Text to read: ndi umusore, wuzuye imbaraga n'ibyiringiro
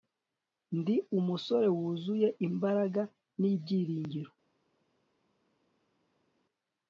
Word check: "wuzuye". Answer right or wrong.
right